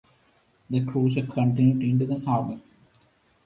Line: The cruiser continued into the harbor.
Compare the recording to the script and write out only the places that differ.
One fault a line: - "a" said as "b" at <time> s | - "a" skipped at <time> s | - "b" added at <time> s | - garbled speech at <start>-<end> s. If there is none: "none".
none